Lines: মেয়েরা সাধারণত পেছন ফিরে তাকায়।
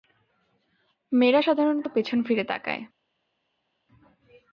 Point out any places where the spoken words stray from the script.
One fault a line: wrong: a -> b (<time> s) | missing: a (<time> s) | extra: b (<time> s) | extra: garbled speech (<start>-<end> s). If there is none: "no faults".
no faults